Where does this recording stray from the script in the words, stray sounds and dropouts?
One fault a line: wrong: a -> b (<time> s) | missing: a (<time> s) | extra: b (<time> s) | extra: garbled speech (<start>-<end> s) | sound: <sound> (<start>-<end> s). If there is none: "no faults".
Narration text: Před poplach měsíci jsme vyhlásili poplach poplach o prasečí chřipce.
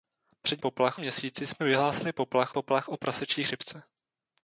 no faults